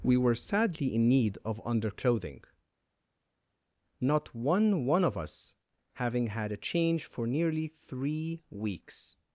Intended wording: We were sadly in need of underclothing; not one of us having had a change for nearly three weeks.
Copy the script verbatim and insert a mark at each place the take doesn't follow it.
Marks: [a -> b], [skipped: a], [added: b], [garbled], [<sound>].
We were sadly in need of underclothing; not one [added: one] of us having had a change for nearly three weeks.